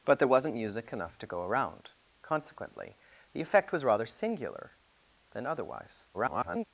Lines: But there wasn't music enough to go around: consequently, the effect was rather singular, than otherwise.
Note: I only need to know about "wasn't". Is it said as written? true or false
true